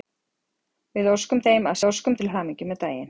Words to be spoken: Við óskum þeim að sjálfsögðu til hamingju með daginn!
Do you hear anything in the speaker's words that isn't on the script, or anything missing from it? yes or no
yes